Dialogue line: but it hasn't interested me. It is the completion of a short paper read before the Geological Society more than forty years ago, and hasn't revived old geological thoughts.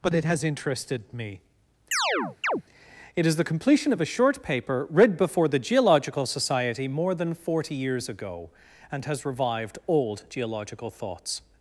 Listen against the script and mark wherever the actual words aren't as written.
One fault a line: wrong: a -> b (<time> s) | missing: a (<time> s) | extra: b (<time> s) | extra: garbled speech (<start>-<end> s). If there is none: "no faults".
wrong: hasn't -> has (0.2 s)
wrong: hasn't -> has (9.1 s)